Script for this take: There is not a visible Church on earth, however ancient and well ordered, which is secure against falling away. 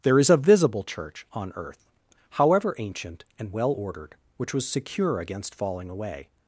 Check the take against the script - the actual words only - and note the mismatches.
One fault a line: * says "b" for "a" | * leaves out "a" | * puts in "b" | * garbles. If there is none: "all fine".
* leaves out "not"
* says "was" for "is"